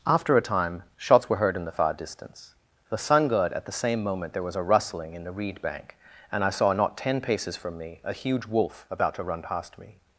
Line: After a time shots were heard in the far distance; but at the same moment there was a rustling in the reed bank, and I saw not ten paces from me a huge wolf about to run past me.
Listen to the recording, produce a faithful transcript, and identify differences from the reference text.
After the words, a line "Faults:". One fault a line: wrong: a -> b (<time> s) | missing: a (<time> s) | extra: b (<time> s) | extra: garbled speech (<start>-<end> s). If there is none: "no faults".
After a time shots were heard in the far distance; the sun god at the same moment there was a rustling in the reed bank, and I saw not ten paces from me a huge wolf about to run past me.
Faults:
wrong: but -> the sun god (2.9 s)